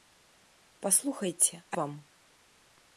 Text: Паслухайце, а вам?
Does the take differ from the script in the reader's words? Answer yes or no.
no